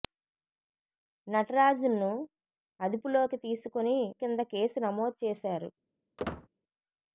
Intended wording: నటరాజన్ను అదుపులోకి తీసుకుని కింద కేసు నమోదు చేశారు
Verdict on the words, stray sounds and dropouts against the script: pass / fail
fail